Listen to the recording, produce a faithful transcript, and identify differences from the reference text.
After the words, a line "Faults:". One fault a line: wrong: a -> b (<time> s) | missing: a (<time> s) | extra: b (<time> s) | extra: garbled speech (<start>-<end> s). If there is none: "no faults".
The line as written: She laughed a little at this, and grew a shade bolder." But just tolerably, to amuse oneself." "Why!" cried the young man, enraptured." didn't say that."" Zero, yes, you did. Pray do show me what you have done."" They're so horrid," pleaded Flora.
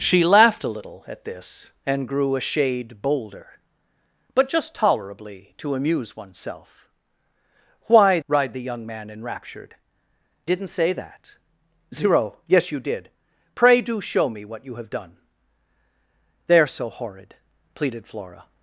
She laughed a little at this, and grew a shade bolder." But just tolerably, to amuse oneself." "Why!" cried the young man, enraptured." didn't say that."" Zero, yes, you did. Pray do show me what you have done."" They're so horrid," pleaded Flora.
Faults:
no faults